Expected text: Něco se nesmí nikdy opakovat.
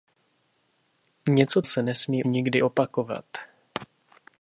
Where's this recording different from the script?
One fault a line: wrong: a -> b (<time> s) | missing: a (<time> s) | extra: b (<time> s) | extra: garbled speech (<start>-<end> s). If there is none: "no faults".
no faults